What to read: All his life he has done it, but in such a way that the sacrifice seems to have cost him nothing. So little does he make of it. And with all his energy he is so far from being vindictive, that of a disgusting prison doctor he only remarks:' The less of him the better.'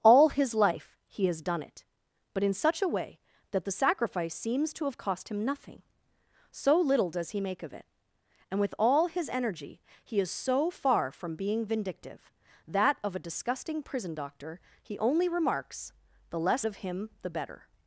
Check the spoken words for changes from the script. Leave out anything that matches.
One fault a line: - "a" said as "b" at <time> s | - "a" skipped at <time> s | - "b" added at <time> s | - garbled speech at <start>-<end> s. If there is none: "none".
none